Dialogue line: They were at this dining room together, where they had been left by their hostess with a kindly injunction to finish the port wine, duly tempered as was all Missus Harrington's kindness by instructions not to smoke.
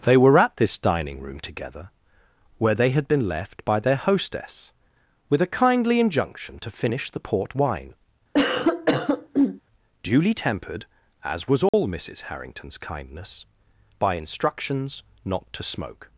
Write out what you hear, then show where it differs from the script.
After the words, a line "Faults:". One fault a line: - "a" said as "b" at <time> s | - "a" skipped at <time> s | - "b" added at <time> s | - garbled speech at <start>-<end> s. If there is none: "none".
They were at this dining room together, where they had been left by their hostess with a kindly injunction to finish the port wine, duly tempered as was all Missus Harrington's kindness by instructions not to smoke.
Faults:
none